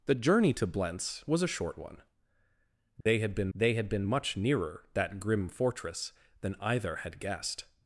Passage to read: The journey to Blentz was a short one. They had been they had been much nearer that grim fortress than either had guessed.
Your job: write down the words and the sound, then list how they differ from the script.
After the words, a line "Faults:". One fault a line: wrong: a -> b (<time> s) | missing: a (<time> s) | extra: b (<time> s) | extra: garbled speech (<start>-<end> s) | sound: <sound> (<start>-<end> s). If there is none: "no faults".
The journey to Blentz was a short one. They had been they had been much nearer that grim fortress than either had guessed.
Faults:
sound: dropout (3.0-3.1 s)